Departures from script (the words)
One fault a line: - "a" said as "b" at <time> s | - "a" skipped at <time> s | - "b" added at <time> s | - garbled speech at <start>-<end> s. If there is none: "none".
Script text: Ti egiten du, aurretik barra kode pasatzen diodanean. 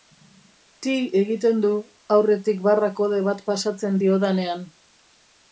- "bat" added at 3.3 s